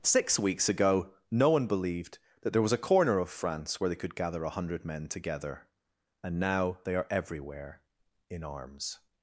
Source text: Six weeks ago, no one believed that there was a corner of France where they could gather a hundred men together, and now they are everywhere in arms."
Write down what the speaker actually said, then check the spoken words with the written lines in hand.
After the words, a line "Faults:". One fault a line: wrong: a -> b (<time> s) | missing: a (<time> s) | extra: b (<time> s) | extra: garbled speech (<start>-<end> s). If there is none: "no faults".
Six weeks ago, no one believed that there was a corner of France where they could gather a hundred men together, and now they are everywhere in arms."
Faults:
no faults